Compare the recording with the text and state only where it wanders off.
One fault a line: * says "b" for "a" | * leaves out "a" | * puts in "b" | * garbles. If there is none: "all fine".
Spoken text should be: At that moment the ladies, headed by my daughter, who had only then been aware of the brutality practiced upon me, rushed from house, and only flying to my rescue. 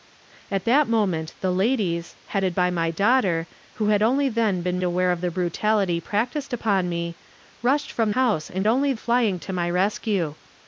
all fine